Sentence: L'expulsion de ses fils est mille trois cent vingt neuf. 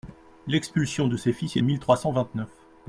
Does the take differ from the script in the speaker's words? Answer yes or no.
no